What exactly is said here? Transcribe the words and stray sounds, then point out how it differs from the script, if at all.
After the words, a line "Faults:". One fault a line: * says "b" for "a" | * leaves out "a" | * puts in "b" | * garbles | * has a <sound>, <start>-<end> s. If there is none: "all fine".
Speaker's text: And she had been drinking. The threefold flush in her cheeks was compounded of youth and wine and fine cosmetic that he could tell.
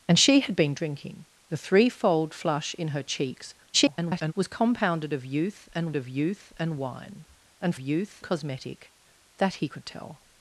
And she had been drinking. The threefold flush in her cheeks [garbled] was compounded of youth and of youth and wine and youth cosmetic that he could tell.
Faults:
* garbles
* puts in "of youth and"
* says "youth" for "fine"